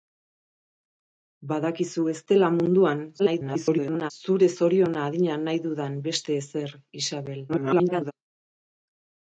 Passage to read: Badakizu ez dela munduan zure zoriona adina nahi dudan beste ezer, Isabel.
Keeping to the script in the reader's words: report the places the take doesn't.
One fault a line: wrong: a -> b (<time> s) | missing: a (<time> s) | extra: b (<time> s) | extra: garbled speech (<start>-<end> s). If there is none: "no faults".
extra: garbled speech (3.2-4.1 s)
extra: garbled speech (7.5-8.1 s)